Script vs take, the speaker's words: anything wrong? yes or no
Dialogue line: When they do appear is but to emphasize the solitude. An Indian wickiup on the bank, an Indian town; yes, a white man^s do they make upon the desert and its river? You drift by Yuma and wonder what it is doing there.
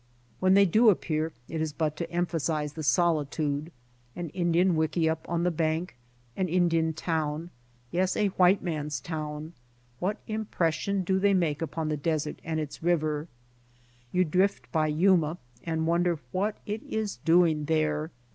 yes